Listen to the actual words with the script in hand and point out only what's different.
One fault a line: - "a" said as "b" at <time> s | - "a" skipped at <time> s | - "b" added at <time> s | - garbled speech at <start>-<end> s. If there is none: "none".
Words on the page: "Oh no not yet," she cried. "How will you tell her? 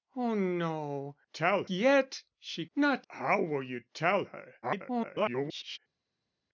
- "not" said as "tell" at 1.3 s
- "cried" said as "not" at 2.7 s
- garbled speech at 4.6-5.8 s